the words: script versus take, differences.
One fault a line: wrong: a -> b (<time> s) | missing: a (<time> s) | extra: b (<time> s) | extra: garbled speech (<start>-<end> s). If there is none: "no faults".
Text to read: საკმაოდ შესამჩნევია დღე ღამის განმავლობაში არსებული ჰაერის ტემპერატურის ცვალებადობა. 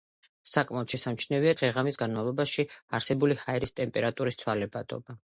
no faults